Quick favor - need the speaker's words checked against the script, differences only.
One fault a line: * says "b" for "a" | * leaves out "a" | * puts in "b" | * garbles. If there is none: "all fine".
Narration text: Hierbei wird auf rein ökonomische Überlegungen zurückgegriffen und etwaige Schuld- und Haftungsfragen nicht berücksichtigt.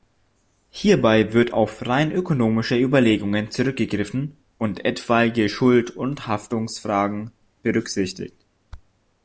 * leaves out "nicht"